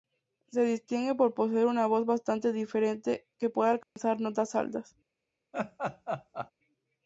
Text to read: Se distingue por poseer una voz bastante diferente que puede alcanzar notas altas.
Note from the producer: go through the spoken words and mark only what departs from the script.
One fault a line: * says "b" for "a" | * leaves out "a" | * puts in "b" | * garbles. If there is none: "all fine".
all fine